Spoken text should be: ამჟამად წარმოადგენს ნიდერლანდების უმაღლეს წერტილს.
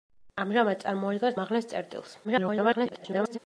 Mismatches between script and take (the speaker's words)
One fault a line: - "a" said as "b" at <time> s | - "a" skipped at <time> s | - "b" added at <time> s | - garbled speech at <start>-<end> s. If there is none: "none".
- "ნიდერლანდების" skipped at 1.4 s
- garbled speech at 2.2-3.4 s